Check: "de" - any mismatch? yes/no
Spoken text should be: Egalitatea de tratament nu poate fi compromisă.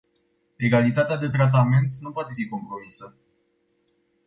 no